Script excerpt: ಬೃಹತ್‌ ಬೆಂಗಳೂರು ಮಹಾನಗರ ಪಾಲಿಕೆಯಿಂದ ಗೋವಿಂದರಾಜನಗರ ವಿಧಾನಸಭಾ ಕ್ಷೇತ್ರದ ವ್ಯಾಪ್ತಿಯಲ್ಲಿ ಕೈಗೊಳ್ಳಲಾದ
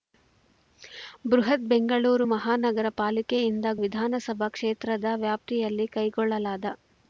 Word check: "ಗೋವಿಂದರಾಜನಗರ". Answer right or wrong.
wrong